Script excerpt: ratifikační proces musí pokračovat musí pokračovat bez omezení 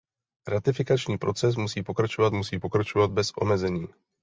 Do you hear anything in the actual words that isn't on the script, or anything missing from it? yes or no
no